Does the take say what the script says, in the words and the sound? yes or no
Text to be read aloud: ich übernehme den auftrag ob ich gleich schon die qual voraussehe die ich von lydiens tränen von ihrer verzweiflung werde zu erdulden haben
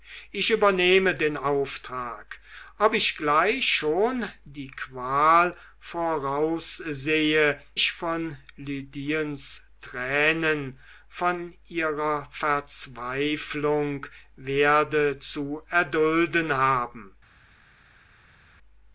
no